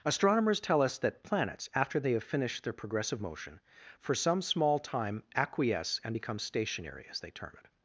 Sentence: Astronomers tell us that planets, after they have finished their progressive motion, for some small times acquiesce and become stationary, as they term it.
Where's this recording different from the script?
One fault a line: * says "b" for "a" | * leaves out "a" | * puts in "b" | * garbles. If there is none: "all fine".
* says "time" for "times"